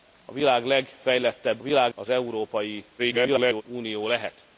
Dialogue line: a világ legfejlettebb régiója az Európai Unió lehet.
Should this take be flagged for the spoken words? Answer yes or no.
yes